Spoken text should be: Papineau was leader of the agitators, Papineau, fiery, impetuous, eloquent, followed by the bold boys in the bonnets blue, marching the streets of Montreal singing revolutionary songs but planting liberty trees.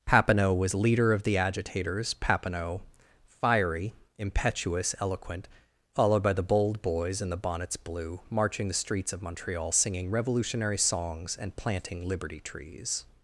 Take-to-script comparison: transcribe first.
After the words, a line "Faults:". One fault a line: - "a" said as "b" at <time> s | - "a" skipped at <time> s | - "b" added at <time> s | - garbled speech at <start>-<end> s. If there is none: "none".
Papineau was leader of the agitators, Papineau, fiery, impetuous, eloquent, followed by the bold boys in the bonnets blue, marching the streets of Montreal singing revolutionary songs and planting liberty trees.
Faults:
- "but" said as "and" at 11.4 s